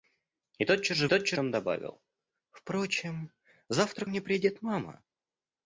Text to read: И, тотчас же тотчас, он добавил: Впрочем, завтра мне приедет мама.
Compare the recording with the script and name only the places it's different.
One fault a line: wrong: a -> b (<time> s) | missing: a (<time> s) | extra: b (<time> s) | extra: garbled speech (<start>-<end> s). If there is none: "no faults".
no faults